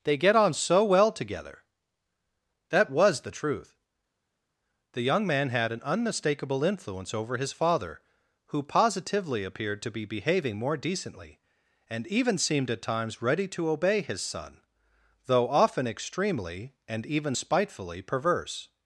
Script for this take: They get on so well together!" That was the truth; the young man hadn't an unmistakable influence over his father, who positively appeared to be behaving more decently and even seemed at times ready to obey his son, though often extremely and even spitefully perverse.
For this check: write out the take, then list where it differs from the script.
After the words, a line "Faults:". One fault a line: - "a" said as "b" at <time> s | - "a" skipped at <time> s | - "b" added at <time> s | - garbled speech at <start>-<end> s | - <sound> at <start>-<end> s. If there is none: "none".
They get on so well together!" That was the truth; the young man had an unmistakable influence over his father, who positively appeared to be behaving more decently and even seemed at times ready to obey his son, though often extremely and even spitefully perverse.
Faults:
- "hadn't" said as "had" at 5.5 s